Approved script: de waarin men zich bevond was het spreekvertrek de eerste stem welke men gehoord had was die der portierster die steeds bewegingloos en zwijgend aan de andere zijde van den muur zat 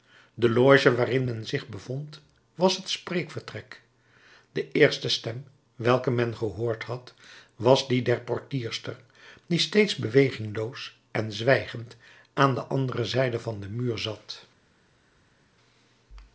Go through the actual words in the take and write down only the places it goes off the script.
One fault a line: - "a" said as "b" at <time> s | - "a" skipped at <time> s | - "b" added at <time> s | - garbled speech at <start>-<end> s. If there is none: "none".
- "loge" added at 0.5 s